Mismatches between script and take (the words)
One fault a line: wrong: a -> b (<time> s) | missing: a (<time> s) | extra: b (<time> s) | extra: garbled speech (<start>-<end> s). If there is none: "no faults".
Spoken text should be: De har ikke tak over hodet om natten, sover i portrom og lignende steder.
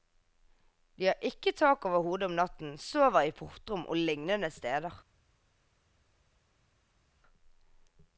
no faults